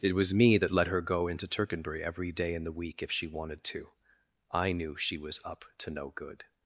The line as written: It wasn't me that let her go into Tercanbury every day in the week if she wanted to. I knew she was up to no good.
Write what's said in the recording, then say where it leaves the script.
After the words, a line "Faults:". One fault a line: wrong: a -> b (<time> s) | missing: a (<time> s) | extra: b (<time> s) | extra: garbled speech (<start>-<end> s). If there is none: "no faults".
It was me that let her go into Tercanbury every day in the week if she wanted to. I knew she was up to no good.
Faults:
wrong: wasn't -> was (0.1 s)